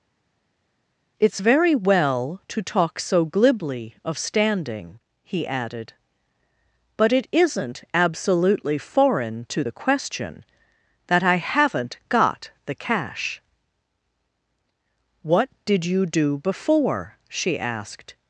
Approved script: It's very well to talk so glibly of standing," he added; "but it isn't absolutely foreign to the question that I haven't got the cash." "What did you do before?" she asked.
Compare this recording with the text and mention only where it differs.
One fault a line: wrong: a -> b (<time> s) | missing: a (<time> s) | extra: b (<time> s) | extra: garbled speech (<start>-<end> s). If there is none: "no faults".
no faults